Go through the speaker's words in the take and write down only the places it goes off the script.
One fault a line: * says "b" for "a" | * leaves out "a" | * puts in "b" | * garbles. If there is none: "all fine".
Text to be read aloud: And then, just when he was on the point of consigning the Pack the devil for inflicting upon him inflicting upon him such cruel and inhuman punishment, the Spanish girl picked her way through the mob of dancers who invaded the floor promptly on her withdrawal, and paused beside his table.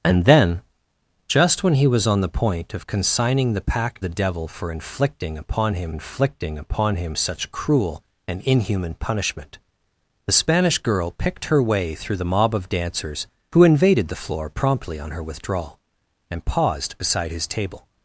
all fine